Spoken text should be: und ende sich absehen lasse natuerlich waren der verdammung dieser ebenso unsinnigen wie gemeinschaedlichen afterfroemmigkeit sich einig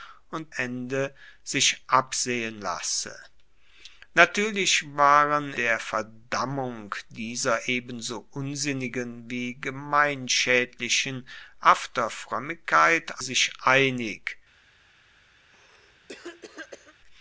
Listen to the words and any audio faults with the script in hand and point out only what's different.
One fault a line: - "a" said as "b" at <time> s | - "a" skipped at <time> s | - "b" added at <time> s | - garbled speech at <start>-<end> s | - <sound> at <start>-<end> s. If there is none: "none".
- cough at 15.4-16.9 s